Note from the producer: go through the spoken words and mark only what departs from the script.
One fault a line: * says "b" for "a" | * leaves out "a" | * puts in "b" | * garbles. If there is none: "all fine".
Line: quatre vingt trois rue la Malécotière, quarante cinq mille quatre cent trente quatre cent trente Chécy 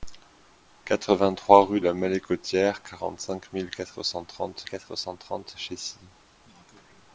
all fine